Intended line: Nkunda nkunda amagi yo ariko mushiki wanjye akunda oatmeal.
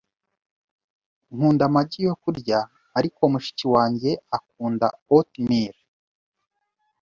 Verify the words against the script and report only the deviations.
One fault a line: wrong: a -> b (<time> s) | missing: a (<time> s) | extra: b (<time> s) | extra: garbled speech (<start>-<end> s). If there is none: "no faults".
missing: nkunda (1.6 s)
extra: kurya (2.2 s)